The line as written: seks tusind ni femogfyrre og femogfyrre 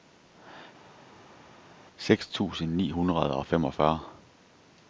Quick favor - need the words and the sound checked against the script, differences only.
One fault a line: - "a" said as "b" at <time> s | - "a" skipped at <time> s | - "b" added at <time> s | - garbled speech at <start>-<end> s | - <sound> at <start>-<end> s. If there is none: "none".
- "femogfyrre" said as "hundrede" at 2.9 s